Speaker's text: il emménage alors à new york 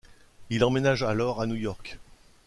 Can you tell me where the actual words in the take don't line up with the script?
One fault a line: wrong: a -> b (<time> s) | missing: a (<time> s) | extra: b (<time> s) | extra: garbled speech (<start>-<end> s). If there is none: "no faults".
no faults